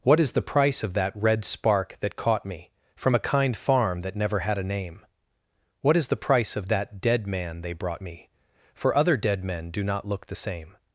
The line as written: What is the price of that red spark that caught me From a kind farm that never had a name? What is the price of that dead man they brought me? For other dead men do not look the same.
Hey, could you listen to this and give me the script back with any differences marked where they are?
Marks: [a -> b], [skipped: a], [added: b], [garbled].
What is the price of that red spark that caught me From a kind farm that never had a name? What is the price of that dead man they brought me? For other dead men do not look the same.